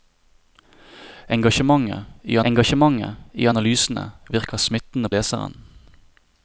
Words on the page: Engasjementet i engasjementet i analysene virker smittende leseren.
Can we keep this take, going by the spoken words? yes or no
yes